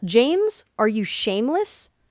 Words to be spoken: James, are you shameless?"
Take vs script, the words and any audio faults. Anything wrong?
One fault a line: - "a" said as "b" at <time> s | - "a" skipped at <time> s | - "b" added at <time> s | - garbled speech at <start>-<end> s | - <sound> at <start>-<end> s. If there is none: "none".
none